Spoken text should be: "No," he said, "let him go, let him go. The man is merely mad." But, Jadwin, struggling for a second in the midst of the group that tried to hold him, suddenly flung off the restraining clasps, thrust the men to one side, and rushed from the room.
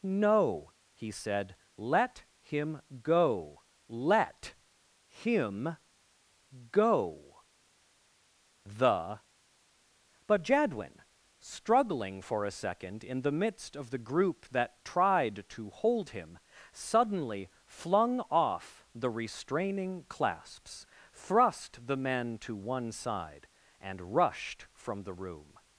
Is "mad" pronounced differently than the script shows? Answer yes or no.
yes